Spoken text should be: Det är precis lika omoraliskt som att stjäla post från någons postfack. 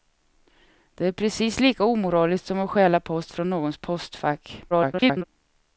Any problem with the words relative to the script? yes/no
yes